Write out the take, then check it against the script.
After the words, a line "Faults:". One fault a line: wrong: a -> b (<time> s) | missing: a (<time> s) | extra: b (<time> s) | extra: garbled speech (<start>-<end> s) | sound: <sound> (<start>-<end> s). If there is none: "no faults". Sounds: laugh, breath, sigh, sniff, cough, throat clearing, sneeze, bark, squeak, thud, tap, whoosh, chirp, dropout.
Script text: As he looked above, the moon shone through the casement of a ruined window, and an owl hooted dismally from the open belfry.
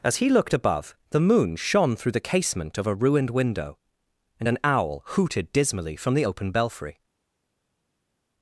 As he looked above, the moon shone through the casement of a ruined window, and an owl hooted dismally from the open belfry.
Faults:
no faults